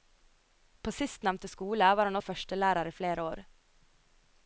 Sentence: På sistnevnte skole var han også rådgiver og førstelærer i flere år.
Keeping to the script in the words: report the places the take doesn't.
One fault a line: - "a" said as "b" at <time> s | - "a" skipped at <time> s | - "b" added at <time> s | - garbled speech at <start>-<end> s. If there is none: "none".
- "også rådgiver" skipped at 2.1 s